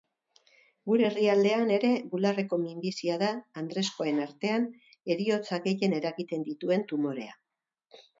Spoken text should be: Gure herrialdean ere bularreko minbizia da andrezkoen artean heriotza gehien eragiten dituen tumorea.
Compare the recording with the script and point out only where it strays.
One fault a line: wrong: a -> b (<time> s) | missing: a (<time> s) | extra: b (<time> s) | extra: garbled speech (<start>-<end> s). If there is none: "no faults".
no faults